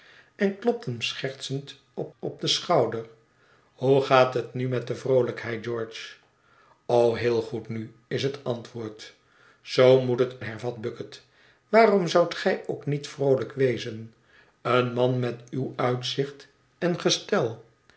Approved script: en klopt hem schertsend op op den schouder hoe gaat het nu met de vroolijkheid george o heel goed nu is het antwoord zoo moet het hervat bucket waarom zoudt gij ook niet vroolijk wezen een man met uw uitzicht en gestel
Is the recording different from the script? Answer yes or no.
no